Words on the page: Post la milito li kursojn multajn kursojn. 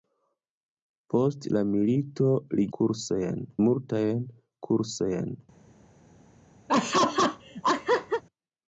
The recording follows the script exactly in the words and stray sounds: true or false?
false